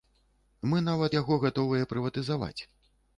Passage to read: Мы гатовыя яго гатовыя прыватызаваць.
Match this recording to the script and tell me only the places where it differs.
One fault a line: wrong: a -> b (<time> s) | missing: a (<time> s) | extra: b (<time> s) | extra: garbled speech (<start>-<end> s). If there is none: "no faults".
wrong: гатовыя -> нават (0.8 s)